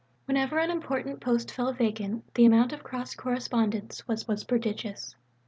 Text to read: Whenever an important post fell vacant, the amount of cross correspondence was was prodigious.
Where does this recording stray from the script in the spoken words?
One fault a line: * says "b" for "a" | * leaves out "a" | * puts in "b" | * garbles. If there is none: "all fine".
all fine